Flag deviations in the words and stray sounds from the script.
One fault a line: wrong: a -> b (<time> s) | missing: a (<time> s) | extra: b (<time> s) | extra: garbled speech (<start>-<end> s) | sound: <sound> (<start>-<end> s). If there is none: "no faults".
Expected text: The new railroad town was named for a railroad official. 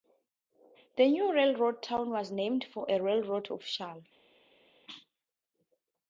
no faults